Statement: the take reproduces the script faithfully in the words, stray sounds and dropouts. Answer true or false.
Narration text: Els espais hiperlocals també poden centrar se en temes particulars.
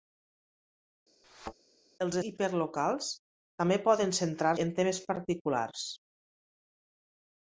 false